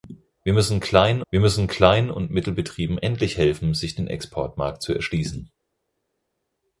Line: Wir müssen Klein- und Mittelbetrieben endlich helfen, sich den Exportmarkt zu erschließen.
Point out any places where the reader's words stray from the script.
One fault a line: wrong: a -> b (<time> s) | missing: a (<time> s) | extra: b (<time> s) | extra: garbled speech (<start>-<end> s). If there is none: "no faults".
extra: wir müssen Klein (1.3 s)